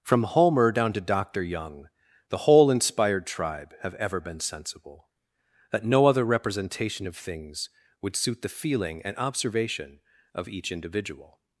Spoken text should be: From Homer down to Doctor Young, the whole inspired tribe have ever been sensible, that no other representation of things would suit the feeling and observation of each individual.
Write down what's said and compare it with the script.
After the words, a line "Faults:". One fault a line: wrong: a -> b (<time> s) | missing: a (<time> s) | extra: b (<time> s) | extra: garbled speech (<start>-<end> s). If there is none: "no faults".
From Homer down to Doctor Young, the whole inspired tribe have ever been sensible, that no other representation of things would suit the feeling and observation of each individual.
Faults:
no faults